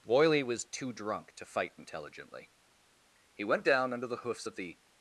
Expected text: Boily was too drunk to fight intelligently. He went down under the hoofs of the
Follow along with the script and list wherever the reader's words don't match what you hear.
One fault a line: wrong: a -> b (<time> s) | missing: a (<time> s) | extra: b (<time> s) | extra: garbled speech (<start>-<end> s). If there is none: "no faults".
no faults